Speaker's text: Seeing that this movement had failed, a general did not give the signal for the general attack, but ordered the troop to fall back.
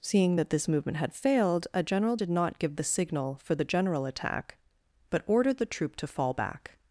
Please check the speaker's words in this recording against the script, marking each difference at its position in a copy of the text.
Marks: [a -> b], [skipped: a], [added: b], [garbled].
Seeing that this movement had failed, a general did not give the signal for the general attack, but ordered the troop to fall back.